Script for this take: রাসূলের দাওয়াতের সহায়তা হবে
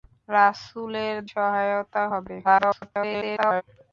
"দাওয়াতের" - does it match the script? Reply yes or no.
no